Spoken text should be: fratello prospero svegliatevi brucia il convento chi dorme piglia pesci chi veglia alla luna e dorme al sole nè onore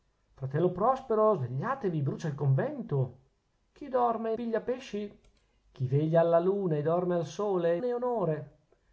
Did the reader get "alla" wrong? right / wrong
right